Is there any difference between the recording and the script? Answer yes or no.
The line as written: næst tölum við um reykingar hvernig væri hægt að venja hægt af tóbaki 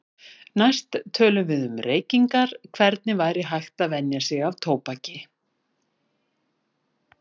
yes